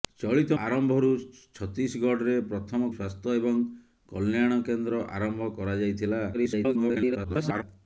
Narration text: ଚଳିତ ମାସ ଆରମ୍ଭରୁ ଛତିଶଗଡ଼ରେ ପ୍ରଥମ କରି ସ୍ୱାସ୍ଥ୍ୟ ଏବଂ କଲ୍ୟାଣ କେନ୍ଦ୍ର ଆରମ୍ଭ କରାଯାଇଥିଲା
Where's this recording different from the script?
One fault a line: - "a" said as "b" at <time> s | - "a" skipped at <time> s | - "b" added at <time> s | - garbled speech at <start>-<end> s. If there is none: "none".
- "ମାସ" skipped at 0.6 s
- "କରି" skipped at 2.9 s
- garbled speech at 6.3-7.6 s